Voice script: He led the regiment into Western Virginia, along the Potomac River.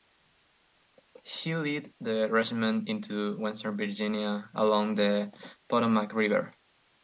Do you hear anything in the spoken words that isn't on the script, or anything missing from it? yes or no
no